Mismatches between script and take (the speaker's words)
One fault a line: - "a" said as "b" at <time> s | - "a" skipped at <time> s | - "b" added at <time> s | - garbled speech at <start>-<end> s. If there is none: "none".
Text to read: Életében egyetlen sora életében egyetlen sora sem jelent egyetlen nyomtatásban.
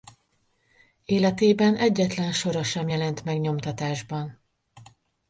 - "életében egyetlen sora" skipped at 2.6 s
- "egyetlen" said as "meg" at 3.2 s